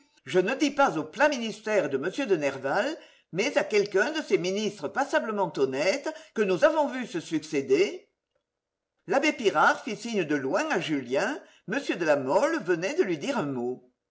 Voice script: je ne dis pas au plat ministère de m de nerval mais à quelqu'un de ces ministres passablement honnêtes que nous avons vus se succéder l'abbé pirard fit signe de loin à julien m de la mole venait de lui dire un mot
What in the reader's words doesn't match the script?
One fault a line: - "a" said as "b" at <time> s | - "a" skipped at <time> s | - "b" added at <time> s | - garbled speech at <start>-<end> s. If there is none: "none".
none